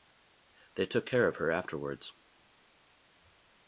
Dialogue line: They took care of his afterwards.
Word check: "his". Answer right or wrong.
wrong